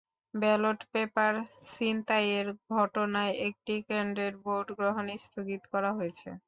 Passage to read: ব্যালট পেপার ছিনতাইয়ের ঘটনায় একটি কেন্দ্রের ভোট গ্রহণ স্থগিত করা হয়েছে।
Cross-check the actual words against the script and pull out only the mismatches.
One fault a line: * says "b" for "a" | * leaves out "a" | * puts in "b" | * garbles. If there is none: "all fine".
all fine